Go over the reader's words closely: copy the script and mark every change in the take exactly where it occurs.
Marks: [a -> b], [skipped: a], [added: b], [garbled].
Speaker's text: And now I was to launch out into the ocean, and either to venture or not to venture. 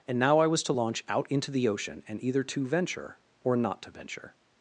And now I was to launch out into the ocean, and either to venture or not to venture.